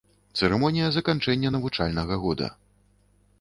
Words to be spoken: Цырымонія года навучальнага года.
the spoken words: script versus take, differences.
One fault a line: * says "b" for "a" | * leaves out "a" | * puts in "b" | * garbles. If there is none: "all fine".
* says "заканчэння" for "года"